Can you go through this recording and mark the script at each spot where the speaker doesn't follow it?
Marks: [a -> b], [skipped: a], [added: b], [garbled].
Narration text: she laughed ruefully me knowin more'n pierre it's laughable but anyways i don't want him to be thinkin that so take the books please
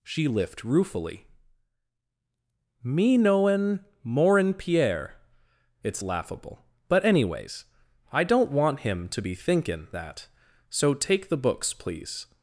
she [laughed -> lift] ruefully me knowin more'n pierre it's laughable but anyways i don't want him to be thinkin that so take the books please